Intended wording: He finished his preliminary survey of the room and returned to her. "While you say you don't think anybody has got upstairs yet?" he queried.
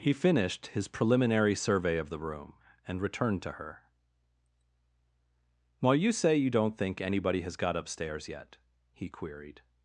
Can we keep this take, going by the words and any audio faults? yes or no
yes